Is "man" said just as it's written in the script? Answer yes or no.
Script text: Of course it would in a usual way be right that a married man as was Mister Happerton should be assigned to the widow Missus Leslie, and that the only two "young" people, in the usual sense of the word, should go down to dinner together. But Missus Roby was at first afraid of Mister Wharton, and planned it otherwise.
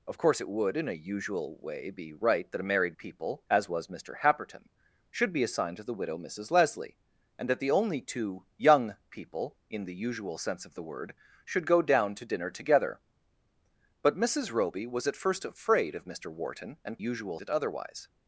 no